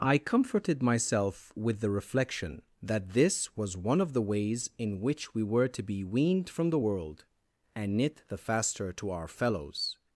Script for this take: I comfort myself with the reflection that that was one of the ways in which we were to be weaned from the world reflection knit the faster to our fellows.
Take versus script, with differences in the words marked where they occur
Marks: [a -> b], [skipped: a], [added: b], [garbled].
I [comfort -> comforted] myself with the reflection that [that -> this] was one of the ways in which we were to be weaned from the world [reflection -> and] knit the faster to our fellows.